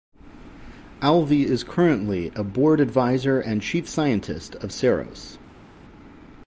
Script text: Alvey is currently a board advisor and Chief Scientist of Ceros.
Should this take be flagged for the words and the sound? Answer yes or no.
no